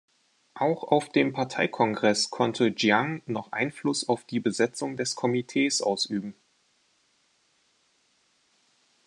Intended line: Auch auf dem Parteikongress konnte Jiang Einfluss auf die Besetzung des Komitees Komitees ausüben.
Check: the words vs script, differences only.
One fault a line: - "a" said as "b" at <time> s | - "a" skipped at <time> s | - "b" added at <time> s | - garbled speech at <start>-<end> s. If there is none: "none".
- "noch" added at 3.3 s
- "Komitees" skipped at 5.8 s